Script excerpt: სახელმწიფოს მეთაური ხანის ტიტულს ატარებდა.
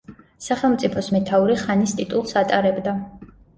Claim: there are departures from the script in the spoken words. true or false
false